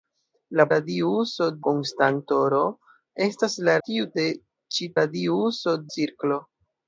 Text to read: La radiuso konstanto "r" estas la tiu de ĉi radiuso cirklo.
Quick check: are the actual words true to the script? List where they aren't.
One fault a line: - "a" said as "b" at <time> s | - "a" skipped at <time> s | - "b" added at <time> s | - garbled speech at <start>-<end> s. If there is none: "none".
none